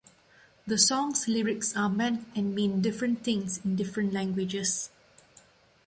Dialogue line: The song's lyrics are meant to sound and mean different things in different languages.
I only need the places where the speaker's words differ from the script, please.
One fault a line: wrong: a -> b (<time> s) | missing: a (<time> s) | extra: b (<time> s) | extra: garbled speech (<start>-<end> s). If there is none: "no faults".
missing: to sound (2.3 s)